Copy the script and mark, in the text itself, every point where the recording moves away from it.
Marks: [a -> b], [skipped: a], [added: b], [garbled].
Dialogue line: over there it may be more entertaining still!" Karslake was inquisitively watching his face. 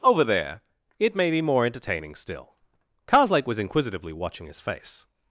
over there it may be more entertaining still!" Karslake was inquisitively watching his face.